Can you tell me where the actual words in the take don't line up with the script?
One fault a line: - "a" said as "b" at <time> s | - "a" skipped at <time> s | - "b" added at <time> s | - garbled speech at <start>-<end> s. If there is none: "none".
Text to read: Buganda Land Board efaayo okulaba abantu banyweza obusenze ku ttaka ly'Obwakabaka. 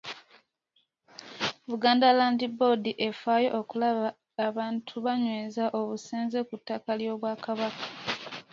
none